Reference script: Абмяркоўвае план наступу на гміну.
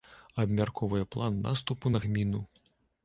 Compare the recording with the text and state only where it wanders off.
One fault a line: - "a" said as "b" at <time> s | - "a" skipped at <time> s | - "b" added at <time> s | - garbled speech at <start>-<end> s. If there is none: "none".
none